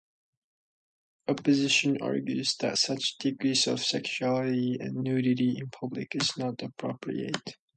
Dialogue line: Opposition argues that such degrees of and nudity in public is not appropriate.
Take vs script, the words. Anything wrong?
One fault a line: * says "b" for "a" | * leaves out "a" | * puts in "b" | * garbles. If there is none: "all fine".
* puts in "sexuality"